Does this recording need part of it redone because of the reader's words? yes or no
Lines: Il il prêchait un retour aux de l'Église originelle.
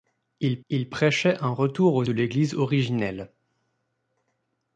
no